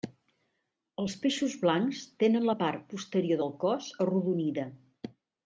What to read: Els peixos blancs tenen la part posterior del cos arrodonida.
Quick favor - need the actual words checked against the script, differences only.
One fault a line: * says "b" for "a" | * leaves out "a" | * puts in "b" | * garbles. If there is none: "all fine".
all fine